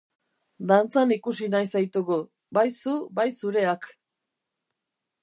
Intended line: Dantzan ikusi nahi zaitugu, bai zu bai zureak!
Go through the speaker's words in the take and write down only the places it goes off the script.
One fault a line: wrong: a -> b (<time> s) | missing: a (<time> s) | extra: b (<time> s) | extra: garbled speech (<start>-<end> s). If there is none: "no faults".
no faults